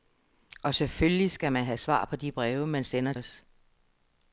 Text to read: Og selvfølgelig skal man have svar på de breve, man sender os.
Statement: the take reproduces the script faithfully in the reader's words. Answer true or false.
true